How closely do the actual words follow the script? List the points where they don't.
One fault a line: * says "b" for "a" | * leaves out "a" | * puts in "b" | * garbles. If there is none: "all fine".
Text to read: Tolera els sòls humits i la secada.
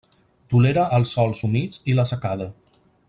all fine